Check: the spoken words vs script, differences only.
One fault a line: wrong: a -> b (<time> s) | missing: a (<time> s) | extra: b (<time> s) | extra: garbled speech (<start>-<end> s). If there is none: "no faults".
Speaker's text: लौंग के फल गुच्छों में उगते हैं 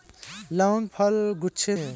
missing: के (0.9 s)
missing: में उगते (1.8 s)